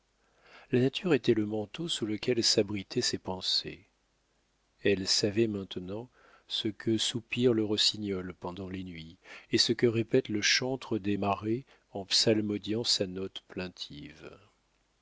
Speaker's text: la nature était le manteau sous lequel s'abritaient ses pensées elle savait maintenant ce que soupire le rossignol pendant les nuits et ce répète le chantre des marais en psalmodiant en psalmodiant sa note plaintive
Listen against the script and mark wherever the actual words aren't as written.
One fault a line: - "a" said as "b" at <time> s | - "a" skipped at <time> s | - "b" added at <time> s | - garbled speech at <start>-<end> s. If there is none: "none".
- "que" added at 9.7 s
- "en psalmodiant" skipped at 12.8 s